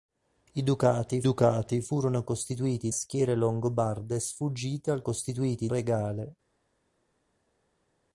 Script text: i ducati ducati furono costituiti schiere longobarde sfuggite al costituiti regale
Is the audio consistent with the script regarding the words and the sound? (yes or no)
yes